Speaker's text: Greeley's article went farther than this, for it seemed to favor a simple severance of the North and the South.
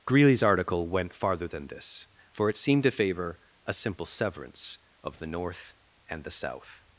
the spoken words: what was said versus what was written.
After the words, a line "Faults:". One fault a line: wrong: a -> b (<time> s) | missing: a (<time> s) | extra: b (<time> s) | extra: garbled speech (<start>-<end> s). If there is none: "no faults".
Greeley's article went farther than this, for it seemed to favor a simple severance of the North and the South.
Faults:
no faults